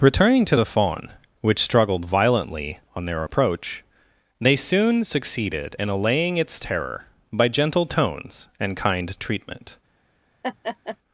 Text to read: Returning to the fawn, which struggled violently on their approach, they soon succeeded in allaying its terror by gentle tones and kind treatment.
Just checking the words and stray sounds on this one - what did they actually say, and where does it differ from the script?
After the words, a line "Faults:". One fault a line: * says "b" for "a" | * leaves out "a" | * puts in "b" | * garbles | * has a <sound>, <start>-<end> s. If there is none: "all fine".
Returning to the fawn, which struggled violently on their approach, they soon succeeded in allaying its terror by gentle tones and kind treatment.
Faults:
* has a laugh, 10.4-11.0 s